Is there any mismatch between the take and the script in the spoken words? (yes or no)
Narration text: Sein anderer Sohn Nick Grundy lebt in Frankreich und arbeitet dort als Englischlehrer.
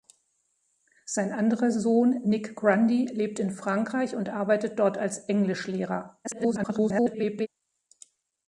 yes